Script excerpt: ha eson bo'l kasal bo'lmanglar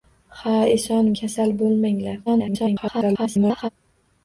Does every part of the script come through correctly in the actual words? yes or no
no